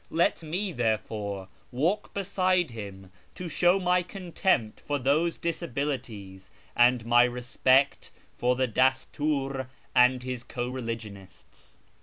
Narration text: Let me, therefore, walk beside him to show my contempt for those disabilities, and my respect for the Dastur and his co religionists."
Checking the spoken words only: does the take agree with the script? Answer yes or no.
yes